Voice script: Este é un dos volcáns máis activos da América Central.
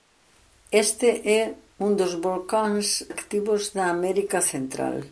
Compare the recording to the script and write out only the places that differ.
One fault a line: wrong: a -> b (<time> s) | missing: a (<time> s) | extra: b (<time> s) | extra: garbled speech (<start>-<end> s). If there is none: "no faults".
missing: máis (2.9 s)